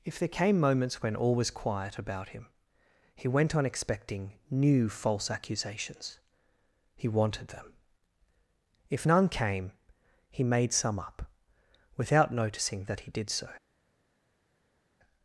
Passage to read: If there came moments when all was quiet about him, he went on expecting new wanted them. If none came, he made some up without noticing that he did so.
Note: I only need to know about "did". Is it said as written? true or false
true